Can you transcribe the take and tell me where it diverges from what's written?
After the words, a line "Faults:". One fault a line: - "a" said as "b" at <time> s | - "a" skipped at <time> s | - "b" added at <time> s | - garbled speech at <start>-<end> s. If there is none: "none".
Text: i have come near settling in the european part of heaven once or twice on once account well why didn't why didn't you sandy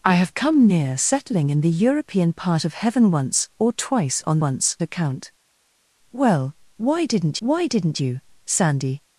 i have come near settling in the european part of heaven once or twice on once account well why didn't why didn't you sandy
Faults:
none